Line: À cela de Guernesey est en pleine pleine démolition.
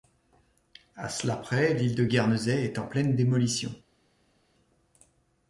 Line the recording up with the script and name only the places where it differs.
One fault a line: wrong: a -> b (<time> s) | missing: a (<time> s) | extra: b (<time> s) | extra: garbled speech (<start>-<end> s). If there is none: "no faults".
extra: près l'île (1.4 s)
missing: pleine (3.2 s)